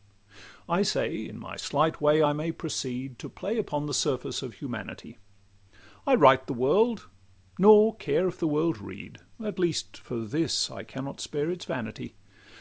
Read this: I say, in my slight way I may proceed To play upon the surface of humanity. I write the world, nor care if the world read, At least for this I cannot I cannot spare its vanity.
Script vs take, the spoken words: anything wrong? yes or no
yes